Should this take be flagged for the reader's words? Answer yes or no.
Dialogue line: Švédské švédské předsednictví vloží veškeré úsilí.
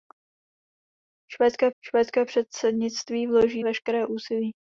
no